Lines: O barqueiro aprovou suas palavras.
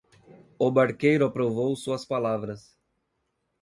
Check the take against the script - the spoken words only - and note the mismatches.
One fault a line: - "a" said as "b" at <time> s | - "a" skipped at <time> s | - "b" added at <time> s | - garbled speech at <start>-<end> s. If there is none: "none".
none